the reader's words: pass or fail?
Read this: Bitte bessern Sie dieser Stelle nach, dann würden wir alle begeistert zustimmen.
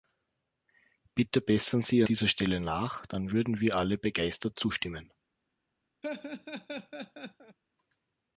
pass